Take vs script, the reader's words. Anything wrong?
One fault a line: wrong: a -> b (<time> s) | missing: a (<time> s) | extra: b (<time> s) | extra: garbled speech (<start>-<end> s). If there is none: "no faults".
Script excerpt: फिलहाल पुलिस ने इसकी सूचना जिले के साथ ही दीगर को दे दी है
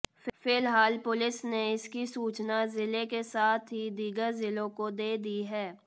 extra: जिलों (4.3 s)